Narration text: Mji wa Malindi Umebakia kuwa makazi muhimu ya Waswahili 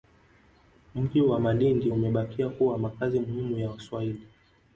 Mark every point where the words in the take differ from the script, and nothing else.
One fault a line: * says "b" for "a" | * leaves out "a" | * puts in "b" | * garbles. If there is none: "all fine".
all fine